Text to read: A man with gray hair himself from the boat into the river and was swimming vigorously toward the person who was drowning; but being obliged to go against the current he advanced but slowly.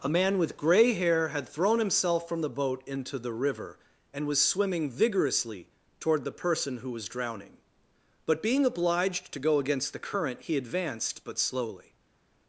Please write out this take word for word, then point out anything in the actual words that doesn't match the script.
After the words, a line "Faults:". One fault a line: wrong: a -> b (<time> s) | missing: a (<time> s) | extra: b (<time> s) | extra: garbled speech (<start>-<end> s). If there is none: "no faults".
A man with gray hair had thrown himself from the boat into the river and was swimming vigorously toward the person who was drowning; but being obliged to go against the current he advanced but slowly.
Faults:
extra: had thrown (1.3 s)